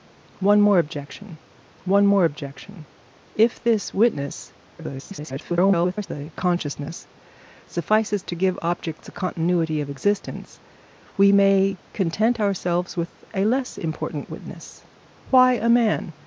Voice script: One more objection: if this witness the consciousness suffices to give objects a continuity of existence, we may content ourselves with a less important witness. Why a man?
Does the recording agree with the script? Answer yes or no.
no